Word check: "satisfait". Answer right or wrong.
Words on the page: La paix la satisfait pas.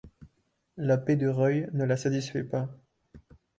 right